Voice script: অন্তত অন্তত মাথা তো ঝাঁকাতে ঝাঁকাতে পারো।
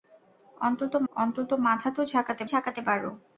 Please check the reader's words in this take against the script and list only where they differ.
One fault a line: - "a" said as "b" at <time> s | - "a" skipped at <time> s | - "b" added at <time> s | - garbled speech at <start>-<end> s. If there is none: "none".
none